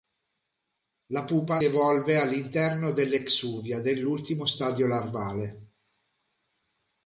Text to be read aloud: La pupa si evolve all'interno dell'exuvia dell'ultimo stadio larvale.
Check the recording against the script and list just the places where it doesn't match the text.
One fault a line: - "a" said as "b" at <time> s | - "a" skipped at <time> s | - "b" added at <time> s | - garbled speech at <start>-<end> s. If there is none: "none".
- "si" skipped at 1.6 s